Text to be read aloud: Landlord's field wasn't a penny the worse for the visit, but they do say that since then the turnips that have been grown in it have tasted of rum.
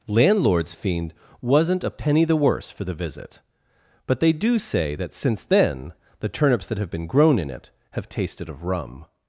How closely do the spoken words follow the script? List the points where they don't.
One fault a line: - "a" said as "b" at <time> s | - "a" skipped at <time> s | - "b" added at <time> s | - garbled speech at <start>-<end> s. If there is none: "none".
- "field" said as "fiend" at 0.7 s